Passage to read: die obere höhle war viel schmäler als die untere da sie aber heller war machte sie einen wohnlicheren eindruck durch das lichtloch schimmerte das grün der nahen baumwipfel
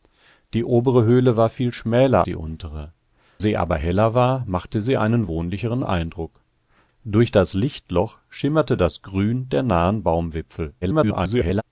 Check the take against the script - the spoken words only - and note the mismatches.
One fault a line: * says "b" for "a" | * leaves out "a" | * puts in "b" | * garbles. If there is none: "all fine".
* leaves out "als"
* leaves out "da"
* garbles